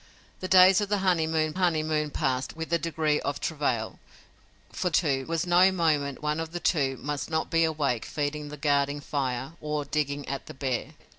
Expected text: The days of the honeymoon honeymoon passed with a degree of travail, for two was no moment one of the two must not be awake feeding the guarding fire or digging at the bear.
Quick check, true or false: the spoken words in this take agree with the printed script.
true